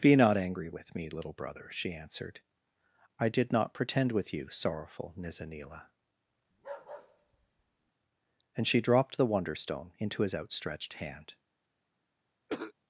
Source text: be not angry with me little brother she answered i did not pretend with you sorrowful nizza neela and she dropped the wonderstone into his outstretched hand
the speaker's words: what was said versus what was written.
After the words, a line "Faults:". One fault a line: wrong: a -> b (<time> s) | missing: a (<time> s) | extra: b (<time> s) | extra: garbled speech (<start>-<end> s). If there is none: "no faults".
be not angry with me little brother she answered i did not pretend with you sorrowful nizza neela and she dropped the wonderstone into his outstretched hand
Faults:
no faults